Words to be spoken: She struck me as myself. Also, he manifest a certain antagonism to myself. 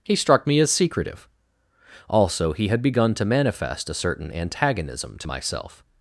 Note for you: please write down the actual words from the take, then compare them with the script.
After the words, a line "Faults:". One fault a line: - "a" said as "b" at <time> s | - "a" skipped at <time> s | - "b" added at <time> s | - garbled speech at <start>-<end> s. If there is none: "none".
He struck me as secretive. Also, he had begun to manifest a certain antagonism to myself.
Faults:
- "She" said as "He" at 0.0 s
- "myself" said as "secretive" at 0.7 s
- "had begun to" added at 2.7 s